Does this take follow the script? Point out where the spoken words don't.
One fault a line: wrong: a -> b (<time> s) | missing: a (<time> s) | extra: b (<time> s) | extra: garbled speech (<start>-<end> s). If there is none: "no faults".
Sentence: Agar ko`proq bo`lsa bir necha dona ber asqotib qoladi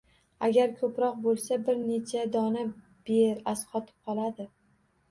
no faults